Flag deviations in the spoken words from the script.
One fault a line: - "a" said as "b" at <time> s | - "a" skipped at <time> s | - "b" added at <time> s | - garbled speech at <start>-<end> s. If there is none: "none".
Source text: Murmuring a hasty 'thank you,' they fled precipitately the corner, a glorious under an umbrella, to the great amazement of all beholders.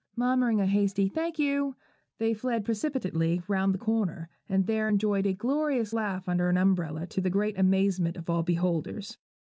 - "round" added at 3.5 s
- "and there enjoyed" added at 4.5 s
- "laugh" added at 5.9 s